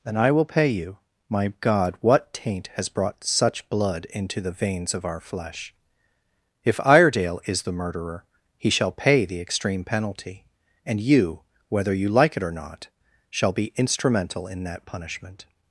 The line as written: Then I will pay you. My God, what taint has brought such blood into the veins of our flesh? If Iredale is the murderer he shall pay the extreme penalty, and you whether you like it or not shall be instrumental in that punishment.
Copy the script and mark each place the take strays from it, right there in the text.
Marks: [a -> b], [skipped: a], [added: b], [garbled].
Then I will pay you. My God, what taint has brought such blood into the veins of our flesh? If Iredale is the murderer he shall pay the extreme penalty, and you whether you like it or not shall be instrumental in that punishment.